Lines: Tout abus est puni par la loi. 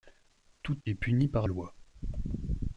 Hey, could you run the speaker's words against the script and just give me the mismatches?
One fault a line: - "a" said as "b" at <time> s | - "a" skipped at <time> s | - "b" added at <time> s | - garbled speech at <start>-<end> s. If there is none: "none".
- "abus" skipped at 0.8 s
- "la" skipped at 1.5 s